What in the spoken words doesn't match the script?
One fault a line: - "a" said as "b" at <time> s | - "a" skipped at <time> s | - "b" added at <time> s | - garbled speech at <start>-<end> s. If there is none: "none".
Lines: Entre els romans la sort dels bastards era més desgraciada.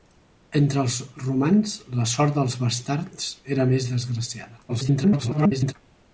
- garbled speech at 4.7-5.7 s